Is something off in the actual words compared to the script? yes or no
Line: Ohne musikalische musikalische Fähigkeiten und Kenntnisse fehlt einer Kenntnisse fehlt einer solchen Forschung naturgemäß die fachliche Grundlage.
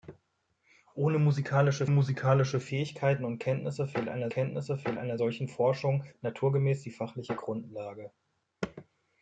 no